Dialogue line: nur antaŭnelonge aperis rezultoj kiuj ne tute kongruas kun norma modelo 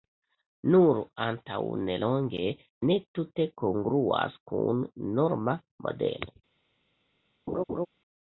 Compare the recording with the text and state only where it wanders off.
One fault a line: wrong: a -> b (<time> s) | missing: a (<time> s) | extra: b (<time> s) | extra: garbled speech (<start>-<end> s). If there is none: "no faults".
missing: aperis rezultoj kiuj (2.5 s)